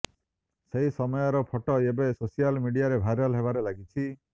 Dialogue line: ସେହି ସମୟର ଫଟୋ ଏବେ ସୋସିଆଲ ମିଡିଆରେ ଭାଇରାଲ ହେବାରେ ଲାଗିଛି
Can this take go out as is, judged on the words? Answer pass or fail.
pass